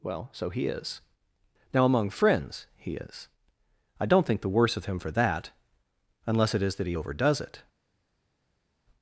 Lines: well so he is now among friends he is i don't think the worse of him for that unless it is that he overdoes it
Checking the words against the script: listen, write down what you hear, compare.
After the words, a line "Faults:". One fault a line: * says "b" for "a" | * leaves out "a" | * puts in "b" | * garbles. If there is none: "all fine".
well so he is now among friends he is i don't think the worse of him for that unless it is that he overdoes it
Faults:
all fine